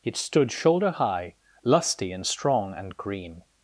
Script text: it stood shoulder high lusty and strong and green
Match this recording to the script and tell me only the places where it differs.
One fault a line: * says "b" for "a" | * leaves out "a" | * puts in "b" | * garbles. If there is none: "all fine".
all fine